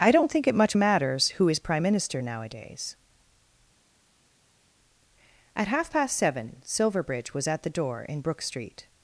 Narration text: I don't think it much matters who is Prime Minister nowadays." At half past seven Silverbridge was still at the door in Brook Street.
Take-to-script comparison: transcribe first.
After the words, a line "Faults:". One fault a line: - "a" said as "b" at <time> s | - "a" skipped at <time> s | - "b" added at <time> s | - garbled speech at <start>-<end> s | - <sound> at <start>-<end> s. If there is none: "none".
I don't think it much matters who is Prime Minister nowadays." At half past seven Silverbridge was at the door in Brook Street.
Faults:
- "still" skipped at 7.5 s